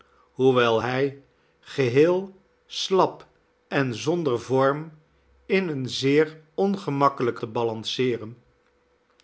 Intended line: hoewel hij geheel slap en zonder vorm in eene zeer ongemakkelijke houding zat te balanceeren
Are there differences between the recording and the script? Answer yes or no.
yes